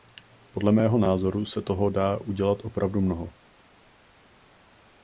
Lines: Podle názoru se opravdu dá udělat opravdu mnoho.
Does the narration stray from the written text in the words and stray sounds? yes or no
yes